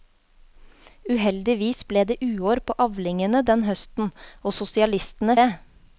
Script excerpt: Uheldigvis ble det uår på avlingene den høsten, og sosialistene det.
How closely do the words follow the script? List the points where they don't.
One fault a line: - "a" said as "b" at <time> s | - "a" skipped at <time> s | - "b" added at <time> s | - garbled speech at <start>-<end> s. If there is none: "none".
none